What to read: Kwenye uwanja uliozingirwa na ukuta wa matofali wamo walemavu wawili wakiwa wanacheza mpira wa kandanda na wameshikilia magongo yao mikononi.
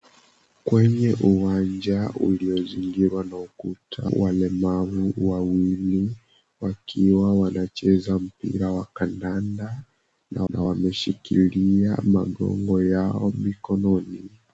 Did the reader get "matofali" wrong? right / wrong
wrong